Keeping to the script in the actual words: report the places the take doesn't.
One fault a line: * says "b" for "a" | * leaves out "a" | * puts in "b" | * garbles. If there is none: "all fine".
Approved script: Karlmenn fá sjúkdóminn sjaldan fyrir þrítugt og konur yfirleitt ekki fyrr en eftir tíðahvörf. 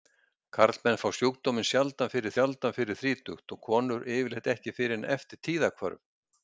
* puts in "sjaldan fyrir"